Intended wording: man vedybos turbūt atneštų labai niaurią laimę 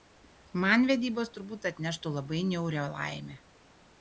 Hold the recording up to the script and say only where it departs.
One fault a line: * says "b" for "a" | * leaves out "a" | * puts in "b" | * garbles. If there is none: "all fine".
all fine